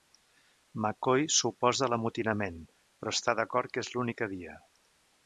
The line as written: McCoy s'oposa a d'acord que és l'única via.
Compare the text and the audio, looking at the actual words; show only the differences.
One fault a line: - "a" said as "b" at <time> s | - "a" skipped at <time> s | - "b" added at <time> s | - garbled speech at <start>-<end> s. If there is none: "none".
- "l'amotinament però està" added at 1.9 s